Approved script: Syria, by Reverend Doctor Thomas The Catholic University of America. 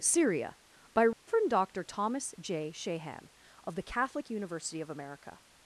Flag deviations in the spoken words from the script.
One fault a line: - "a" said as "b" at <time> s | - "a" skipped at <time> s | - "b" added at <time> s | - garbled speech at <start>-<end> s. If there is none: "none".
- "J Shahan of" added at 2.4 s